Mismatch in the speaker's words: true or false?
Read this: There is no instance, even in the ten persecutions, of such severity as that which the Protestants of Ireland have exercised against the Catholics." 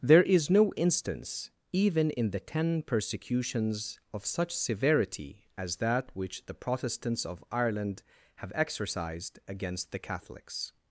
false